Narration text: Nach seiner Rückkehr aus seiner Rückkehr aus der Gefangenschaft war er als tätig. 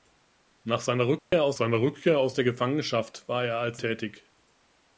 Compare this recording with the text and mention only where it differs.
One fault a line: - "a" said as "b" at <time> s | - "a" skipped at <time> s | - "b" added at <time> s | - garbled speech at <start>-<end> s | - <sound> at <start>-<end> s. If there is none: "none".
- dropout at 1.2-1.3 s